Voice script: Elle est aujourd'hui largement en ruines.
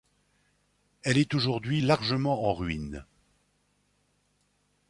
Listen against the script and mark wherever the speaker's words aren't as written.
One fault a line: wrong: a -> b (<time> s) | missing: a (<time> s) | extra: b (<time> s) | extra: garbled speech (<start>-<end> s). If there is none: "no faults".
no faults